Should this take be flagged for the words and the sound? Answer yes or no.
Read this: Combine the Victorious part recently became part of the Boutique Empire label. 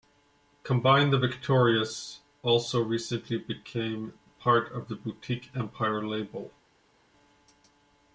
yes